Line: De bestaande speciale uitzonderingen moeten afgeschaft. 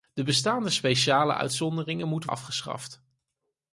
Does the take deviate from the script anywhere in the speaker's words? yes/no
no